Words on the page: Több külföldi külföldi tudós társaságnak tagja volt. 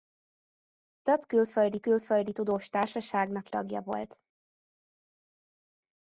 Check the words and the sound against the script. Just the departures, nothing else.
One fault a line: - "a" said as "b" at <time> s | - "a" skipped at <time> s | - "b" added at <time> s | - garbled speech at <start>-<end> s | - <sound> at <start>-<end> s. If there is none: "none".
none